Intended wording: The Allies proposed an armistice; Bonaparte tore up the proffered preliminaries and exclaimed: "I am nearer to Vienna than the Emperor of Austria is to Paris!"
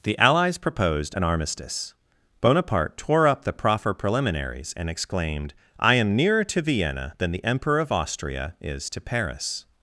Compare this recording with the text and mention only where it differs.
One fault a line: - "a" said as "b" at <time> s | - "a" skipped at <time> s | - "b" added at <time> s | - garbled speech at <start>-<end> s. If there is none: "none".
- "proffered" said as "proffer" at 3.5 s